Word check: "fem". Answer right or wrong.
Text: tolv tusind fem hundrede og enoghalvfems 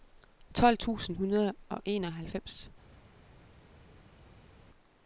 wrong